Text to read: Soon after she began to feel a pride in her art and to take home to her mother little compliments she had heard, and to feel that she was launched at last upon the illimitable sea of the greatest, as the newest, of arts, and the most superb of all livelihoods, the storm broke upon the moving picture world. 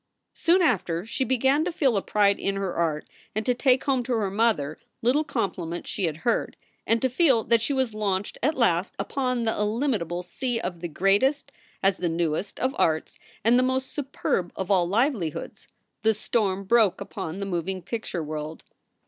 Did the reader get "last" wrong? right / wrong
right